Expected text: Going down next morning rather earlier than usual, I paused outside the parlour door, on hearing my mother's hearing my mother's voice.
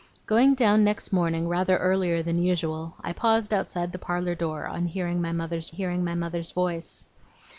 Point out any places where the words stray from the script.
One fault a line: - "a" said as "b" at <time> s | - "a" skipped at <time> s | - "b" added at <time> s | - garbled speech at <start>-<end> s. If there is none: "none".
none